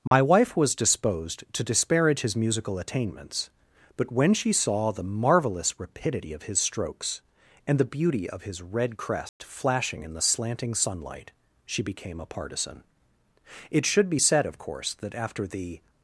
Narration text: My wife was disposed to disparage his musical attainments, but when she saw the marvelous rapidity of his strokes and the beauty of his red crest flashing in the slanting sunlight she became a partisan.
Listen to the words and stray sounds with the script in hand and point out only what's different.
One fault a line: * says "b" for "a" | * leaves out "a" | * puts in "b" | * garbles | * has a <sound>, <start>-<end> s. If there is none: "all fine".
* has a dropout, 0.1-0.1 s
* has a dropout, 9.3-9.4 s
* puts in "It should be said of course that after the"